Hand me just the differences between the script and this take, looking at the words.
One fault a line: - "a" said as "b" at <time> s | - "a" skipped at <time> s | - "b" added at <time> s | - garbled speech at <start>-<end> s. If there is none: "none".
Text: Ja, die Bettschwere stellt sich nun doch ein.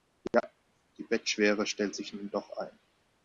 none